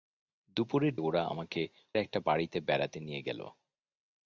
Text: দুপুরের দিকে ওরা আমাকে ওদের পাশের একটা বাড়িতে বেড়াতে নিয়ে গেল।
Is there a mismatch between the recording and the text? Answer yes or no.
yes